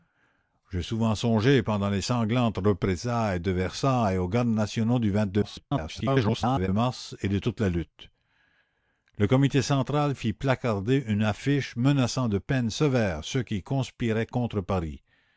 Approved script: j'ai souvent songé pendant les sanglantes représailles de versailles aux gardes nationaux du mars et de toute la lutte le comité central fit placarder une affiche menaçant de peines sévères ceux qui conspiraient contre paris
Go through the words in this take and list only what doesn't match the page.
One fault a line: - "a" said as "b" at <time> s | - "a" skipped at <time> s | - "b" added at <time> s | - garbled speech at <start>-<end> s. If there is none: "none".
- garbled speech at 5.4-6.7 s